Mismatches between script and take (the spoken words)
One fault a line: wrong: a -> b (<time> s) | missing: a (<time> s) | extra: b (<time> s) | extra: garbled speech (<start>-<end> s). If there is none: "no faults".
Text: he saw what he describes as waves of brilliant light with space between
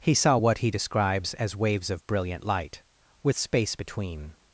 no faults